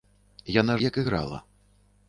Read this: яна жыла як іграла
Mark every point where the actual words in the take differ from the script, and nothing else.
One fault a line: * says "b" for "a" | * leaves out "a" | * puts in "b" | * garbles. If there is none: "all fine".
* leaves out "жыла"